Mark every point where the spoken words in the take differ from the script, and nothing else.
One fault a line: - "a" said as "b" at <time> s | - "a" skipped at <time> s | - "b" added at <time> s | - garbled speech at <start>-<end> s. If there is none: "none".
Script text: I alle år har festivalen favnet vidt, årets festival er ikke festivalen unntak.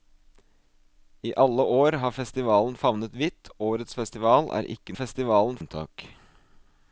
none